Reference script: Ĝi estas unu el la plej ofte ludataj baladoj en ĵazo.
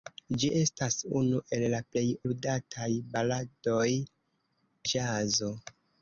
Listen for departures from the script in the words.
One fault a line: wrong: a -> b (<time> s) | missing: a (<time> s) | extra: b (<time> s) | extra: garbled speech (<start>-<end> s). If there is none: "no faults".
missing: ofte (2.0 s)
missing: en (3.9 s)